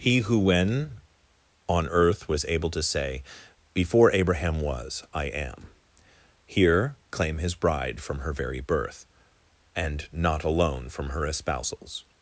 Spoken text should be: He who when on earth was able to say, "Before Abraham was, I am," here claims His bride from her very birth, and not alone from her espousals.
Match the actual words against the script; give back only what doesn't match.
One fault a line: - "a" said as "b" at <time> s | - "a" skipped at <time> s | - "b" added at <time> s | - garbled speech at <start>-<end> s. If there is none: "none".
- "claims" said as "claim" at 7.1 s